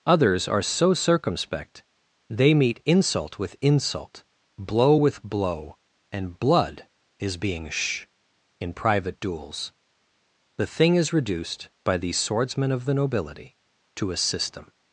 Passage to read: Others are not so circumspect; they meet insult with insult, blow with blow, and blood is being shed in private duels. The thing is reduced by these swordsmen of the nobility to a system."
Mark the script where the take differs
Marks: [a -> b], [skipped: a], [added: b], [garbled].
Others are [skipped: not] so circumspect; they meet insult with insult, blow with blow, and blood is being [shed -> sh] in private duels. The thing is reduced by these swordsmen of the nobility to a system."